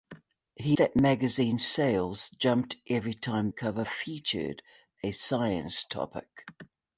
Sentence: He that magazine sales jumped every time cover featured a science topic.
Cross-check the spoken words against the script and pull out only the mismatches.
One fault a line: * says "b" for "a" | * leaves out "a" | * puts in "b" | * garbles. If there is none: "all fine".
all fine